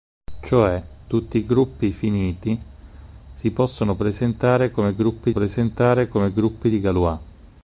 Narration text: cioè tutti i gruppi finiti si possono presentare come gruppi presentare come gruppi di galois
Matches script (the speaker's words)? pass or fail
pass